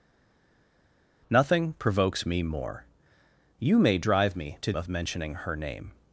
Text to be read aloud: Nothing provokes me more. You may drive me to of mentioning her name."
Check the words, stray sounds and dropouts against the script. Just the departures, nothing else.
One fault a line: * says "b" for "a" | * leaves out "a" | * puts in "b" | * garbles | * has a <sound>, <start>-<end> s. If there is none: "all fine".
all fine